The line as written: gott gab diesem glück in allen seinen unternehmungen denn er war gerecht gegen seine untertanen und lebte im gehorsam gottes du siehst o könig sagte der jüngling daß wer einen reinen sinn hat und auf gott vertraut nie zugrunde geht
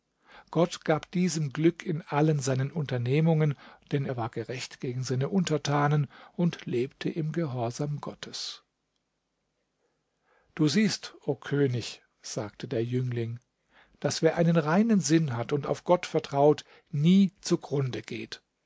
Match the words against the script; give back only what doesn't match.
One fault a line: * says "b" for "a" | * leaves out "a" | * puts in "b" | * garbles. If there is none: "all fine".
all fine